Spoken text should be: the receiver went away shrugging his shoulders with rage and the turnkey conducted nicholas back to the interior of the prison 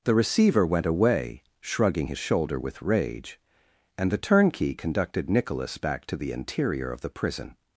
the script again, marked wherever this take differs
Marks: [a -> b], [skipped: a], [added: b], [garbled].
the receiver went away shrugging his [shoulders -> shoulder] with rage and the turnkey conducted nicholas back to the interior of the prison